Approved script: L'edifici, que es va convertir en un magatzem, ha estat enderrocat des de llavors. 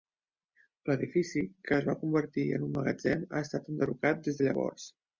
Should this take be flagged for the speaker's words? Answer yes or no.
no